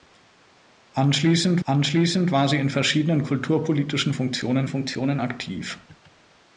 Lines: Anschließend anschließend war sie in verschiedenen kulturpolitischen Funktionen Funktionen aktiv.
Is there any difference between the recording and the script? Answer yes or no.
no